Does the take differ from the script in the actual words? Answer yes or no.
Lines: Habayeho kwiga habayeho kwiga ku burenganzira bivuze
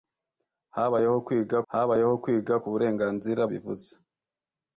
no